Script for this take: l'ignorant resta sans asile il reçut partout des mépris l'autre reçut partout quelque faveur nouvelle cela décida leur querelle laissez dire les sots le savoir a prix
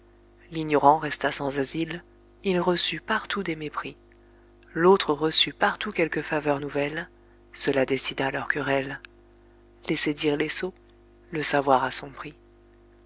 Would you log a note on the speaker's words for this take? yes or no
yes